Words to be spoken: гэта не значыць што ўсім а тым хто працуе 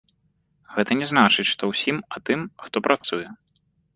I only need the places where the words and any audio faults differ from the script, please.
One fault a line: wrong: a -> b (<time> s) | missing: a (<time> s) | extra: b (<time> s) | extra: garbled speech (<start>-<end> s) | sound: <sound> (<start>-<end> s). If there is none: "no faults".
sound: dropout (3.0-3.0 s)